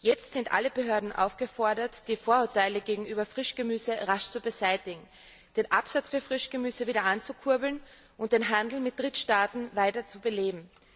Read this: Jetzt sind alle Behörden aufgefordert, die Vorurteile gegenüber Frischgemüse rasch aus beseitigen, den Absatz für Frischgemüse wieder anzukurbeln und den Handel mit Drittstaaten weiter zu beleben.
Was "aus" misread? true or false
true